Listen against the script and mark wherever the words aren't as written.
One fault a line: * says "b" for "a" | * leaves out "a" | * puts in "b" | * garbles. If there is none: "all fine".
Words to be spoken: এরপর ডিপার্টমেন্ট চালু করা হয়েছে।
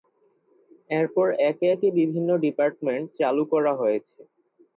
* puts in "একে একে বিভিন্ন"